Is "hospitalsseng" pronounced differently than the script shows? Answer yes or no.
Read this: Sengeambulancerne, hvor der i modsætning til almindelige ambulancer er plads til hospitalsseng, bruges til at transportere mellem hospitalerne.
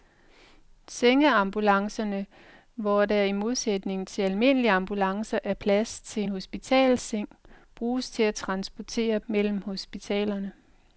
no